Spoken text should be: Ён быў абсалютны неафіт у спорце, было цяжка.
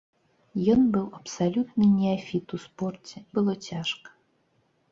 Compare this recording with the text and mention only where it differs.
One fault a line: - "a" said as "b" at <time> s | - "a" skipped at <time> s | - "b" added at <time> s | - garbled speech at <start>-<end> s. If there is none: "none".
none